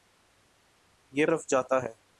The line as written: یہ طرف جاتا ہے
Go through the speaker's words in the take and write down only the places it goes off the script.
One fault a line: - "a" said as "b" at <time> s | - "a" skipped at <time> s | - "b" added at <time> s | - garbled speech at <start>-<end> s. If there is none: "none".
none